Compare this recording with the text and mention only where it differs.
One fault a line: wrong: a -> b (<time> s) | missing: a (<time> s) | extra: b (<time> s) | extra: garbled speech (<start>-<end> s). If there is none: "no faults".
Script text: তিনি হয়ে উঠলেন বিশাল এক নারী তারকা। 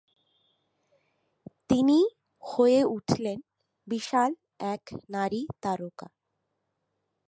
no faults